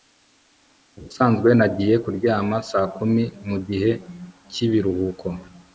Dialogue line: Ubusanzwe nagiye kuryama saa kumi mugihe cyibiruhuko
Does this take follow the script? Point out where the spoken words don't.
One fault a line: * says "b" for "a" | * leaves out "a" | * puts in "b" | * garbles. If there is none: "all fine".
all fine